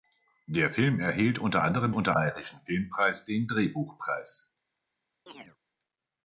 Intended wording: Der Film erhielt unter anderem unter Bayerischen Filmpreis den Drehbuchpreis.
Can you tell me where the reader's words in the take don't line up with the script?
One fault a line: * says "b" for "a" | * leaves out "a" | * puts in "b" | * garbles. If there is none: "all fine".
all fine